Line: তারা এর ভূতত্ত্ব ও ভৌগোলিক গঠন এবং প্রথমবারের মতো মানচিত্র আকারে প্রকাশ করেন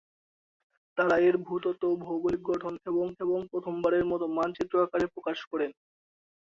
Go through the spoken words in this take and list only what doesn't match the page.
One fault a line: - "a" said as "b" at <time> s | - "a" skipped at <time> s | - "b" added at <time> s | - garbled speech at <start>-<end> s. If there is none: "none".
- "এবং" added at 3.2 s